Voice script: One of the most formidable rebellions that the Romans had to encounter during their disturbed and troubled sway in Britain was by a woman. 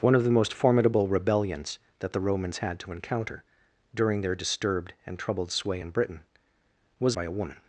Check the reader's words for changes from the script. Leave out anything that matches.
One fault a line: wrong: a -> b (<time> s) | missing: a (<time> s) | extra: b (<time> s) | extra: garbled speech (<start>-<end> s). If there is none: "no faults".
no faults